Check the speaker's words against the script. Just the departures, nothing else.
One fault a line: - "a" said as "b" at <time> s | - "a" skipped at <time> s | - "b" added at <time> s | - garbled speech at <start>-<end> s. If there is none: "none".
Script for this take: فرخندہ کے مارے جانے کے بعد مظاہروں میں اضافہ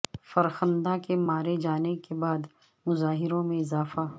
none